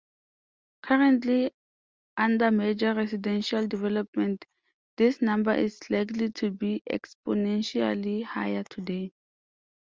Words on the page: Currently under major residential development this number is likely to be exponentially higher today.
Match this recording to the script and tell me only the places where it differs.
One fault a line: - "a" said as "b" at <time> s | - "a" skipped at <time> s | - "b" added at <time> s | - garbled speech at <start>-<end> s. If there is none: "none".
none